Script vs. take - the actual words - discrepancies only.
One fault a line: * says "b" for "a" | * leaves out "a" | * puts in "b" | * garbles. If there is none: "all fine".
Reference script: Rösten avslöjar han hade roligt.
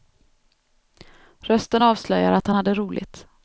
* puts in "att"